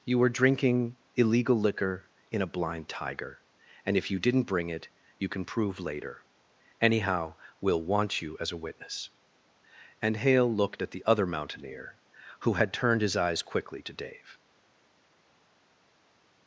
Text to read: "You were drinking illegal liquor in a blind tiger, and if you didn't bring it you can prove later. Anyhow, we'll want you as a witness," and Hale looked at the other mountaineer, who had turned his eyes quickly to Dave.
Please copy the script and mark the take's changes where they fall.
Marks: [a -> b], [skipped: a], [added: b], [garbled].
"You were drinking illegal liquor in a blind tiger, and if you didn't bring it you can prove later. Anyhow, we'll want you as a witness," and Hale looked at the other mountaineer, who had turned his eyes quickly to Dave.